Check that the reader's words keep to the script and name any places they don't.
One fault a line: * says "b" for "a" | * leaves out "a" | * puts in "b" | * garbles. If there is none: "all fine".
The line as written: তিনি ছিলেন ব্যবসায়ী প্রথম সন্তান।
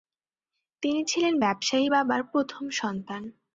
* puts in "বাবার"